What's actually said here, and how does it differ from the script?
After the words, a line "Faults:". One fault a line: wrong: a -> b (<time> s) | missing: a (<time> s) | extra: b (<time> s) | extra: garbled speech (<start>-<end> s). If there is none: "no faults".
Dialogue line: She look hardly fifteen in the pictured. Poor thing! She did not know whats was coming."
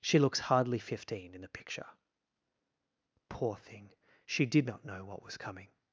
She looks hardly fifteen in the picture. Poor thing! She did not know what was coming."
Faults:
wrong: look -> looks (0.2 s)
wrong: pictured -> picture (1.5 s)
wrong: whats -> what (5.0 s)